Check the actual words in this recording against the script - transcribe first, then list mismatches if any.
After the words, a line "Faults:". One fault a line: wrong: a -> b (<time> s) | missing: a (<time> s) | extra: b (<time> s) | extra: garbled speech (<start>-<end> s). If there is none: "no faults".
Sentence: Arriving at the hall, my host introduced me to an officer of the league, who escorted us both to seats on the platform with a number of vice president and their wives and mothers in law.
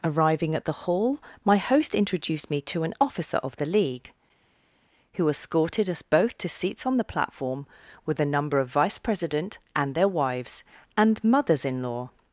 Arriving at the hall, my host introduced me to an officer of the league, who escorted us both to seats on the platform with a number of vice president and their wives and mothers in law.
Faults:
no faults